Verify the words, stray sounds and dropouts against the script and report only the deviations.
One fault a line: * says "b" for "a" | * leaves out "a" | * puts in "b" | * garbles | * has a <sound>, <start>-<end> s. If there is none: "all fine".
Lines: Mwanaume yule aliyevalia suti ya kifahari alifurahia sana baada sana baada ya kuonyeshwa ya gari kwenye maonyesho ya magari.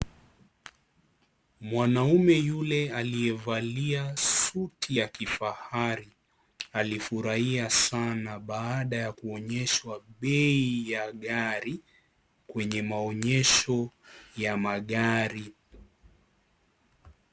* leaves out "sana baada"
* puts in "bei"